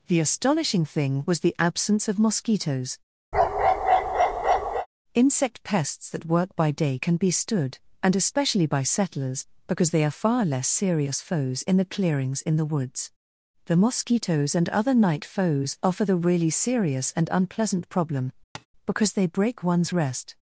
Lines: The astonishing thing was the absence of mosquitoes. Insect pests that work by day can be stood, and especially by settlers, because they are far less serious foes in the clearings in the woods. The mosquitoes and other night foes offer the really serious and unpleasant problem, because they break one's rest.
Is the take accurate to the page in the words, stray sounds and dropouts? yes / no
no